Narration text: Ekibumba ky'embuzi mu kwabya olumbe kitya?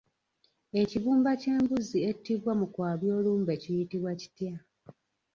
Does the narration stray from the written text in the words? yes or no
yes